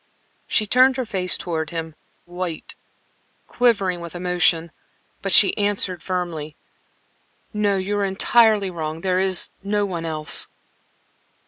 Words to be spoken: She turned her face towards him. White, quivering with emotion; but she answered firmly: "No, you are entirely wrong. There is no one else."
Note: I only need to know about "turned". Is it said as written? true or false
true